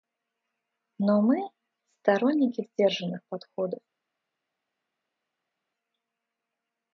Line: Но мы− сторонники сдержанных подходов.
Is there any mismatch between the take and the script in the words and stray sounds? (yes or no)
no